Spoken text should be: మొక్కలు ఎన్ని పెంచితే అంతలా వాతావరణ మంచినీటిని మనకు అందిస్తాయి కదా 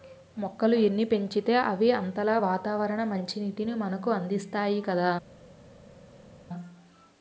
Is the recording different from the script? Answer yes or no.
yes